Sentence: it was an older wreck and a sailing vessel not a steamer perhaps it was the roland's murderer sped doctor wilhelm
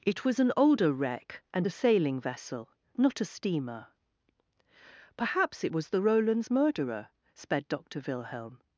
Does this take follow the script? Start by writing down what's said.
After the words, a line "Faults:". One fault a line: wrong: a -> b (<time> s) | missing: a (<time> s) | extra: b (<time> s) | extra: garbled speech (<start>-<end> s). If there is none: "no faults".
it was an older wreck and a sailing vessel not a steamer perhaps it was the roland's murderer sped doctor wilhelm
Faults:
no faults